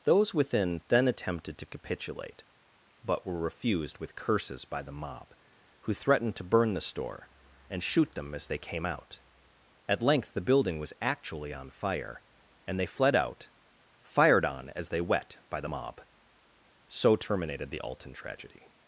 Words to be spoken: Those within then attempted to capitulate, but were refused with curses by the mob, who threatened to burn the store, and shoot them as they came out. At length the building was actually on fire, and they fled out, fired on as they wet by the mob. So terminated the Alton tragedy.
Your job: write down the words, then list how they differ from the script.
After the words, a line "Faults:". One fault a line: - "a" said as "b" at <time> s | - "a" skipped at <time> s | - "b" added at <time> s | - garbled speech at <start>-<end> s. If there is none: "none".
Those within then attempted to capitulate, but were refused with curses by the mob, who threatened to burn the store, and shoot them as they came out. At length the building was actually on fire, and they fled out, fired on as they wet by the mob. So terminated the Alton tragedy.
Faults:
none